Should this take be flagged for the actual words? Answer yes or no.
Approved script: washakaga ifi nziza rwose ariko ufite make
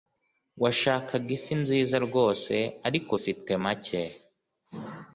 no